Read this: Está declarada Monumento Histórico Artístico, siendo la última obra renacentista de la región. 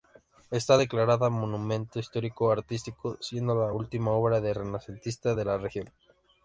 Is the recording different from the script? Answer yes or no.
yes